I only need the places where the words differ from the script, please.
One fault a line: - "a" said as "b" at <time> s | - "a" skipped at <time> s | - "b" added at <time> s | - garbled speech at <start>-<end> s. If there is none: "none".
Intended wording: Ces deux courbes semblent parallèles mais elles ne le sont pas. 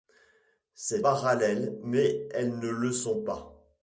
- "deux courbes semblent" skipped at 1.0 s